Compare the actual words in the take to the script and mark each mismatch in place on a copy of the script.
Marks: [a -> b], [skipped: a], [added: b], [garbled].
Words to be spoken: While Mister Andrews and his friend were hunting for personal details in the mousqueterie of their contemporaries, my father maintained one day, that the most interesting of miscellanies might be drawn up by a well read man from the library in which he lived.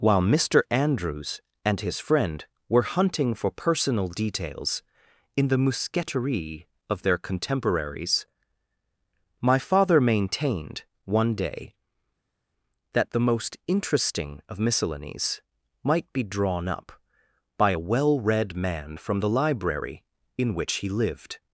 While Mister Andrews and his friend were hunting for personal details in the mousqueterie of their contemporaries, my father maintained one day, that the most interesting of miscellanies might be drawn up by a well read man from the library in which he lived.